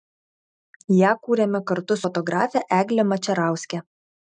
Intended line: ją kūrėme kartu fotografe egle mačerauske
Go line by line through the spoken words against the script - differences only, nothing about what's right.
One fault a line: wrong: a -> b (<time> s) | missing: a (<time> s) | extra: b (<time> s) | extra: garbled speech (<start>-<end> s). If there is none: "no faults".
no faults